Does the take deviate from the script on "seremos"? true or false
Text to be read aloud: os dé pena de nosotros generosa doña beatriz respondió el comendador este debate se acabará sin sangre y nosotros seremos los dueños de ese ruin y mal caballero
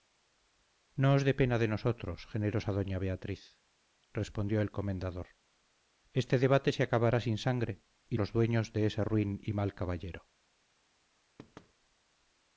true